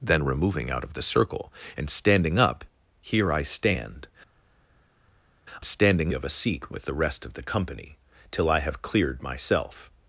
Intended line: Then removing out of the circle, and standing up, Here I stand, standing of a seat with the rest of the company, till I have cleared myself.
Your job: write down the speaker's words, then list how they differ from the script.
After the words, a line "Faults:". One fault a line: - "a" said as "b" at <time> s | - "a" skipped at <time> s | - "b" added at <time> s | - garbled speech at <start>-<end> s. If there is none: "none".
Then removing out of the circle, and standing up, Here I stand, standing of a seat with the rest of the company, till I have cleared myself.
Faults:
none